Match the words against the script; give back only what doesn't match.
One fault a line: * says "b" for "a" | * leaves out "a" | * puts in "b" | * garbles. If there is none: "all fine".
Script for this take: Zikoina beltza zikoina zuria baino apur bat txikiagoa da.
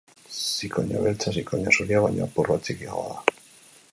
all fine